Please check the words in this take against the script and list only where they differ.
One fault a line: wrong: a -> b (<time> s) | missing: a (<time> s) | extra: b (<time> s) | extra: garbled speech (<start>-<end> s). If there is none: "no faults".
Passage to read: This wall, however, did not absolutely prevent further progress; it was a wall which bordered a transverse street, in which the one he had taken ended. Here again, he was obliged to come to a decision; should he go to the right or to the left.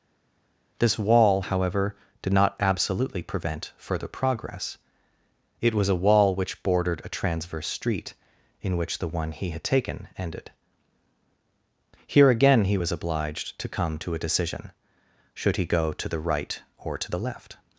no faults